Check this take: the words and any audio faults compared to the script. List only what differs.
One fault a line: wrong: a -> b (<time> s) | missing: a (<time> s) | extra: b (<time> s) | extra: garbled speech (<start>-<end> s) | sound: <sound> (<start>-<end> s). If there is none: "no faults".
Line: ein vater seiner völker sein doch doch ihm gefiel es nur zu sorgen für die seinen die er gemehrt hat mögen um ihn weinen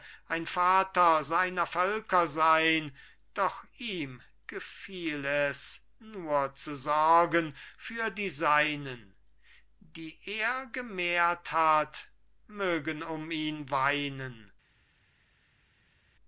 missing: doch (3.6 s)